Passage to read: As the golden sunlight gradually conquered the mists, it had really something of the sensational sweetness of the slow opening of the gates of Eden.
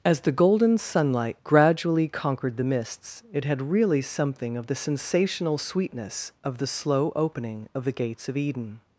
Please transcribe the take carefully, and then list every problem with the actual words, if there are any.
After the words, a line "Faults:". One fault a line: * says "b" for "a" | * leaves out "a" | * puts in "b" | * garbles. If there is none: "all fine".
As the golden sunlight gradually conquered the mists, it had really something of the sensational sweetness of the slow opening of the gates of Eden.
Faults:
all fine